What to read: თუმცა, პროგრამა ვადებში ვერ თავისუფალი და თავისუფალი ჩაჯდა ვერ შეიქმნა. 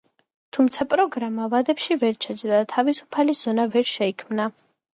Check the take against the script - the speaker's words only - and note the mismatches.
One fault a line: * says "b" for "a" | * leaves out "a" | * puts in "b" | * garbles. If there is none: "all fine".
* says "ჩაჯდა" for "თავისუფალი"
* says "ზონა" for "ჩაჯდა"